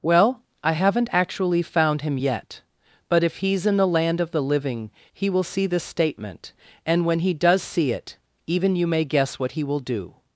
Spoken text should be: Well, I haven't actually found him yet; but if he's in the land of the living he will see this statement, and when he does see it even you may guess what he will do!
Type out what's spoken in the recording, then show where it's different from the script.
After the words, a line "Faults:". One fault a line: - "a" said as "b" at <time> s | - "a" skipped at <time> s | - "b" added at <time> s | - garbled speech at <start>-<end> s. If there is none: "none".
Well, I haven't actually found him yet; but if he's in the land of the living he will see this statement, and when he does see it even you may guess what he will do!
Faults:
none